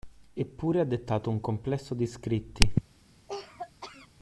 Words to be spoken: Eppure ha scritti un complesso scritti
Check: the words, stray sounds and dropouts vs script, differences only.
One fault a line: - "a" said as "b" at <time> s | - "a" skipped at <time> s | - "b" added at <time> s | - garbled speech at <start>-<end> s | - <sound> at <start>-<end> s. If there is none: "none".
- "scritti" said as "dettato" at 0.8 s
- "di" added at 1.9 s
- cough at 3.3-4.1 s